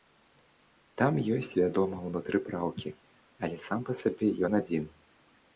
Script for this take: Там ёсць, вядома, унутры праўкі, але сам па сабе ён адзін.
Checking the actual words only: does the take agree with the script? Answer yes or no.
yes